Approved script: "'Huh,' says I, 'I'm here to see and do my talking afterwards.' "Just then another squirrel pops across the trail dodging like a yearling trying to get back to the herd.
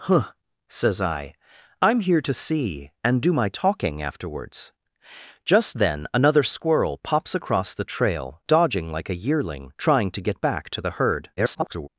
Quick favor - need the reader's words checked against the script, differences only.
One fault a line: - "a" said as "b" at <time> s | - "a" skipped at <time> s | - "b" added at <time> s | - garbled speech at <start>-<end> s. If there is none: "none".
- garbled speech at 11.4-11.9 s